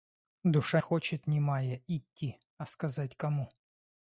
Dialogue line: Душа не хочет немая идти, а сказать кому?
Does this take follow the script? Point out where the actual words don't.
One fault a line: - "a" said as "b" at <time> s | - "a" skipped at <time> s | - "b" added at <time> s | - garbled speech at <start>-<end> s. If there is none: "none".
- "не" skipped at 0.8 s